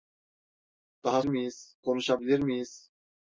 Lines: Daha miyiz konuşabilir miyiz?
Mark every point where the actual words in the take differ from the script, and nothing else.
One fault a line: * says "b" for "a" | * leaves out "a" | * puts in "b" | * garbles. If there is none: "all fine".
all fine